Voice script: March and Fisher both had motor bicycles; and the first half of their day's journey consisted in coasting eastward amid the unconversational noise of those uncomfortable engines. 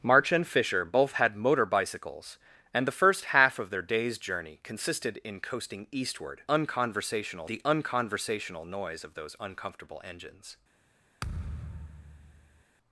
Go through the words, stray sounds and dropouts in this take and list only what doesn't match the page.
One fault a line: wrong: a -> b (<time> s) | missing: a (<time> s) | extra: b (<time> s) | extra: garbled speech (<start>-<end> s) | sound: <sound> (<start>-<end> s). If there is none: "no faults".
wrong: amid -> unconversational (6.5 s)
sound: thud (11.2-12.6 s)